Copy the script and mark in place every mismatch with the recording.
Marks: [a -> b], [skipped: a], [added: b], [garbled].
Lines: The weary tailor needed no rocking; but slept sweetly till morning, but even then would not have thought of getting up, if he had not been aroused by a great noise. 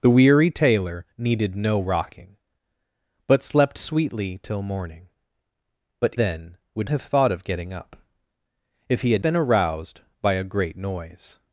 The weary tailor needed no rocking; but slept sweetly till morning, but [skipped: even] then would [skipped: not] have thought of getting up, if he had [skipped: not] been aroused by a great noise.